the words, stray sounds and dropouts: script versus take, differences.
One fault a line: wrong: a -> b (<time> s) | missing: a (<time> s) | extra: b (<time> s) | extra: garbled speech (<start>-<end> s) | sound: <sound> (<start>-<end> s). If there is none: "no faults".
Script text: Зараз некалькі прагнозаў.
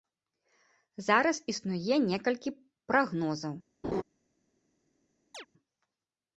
extra: існуе (1.6 s)
sound: laugh (3.8-4.0 s)
sound: chirp (5.3-5.5 s)